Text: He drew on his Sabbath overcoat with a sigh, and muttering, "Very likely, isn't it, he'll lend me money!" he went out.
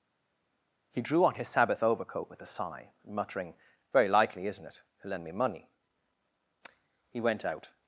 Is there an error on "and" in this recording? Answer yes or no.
yes